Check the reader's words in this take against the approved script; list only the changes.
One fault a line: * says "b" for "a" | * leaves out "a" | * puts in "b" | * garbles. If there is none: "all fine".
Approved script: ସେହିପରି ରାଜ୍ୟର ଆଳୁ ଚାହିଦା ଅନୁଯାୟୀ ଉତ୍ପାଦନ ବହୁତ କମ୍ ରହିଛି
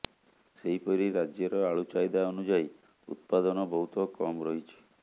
all fine